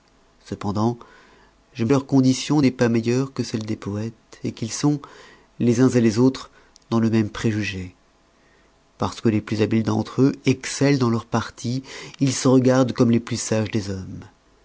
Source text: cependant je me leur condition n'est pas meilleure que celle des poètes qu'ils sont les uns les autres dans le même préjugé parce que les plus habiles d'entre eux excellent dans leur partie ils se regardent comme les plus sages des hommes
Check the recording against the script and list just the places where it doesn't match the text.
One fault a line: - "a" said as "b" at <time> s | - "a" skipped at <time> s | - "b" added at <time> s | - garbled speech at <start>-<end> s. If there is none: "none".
none